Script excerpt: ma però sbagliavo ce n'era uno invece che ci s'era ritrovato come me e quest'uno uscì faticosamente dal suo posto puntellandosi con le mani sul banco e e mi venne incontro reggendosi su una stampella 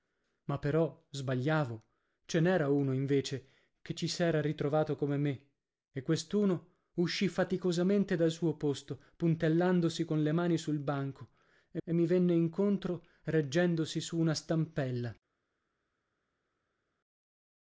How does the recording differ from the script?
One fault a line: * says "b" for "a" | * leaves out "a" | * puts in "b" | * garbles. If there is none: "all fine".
all fine